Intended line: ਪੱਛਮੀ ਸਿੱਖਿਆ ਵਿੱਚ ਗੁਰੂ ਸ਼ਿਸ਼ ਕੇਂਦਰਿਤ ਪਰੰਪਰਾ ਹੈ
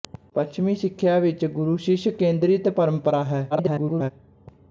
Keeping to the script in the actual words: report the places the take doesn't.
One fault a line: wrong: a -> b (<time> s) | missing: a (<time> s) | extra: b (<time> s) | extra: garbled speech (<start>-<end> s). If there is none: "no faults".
extra: garbled speech (3.5-4.1 s)